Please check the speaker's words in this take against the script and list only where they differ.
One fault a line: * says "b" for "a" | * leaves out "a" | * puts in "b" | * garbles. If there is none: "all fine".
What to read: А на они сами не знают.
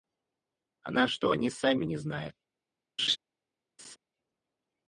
* puts in "что"